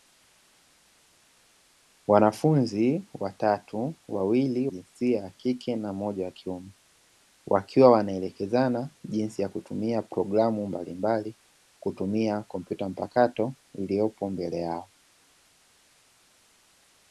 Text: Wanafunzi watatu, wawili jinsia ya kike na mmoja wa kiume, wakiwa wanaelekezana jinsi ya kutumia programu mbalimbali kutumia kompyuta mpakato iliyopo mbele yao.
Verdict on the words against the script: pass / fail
pass